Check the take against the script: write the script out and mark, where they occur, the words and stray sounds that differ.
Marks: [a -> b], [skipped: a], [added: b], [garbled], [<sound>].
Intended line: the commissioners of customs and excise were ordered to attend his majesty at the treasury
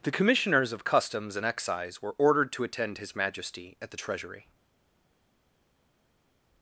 the commissioners of customs and excise were ordered to attend his majesty at the treasury